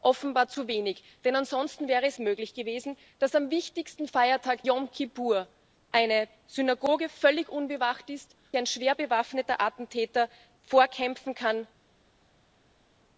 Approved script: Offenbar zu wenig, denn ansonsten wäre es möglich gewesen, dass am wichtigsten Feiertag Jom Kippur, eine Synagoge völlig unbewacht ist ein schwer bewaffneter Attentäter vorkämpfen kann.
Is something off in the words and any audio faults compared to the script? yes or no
no